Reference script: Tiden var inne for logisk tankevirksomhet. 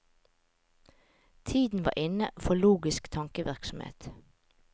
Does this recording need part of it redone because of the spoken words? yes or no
no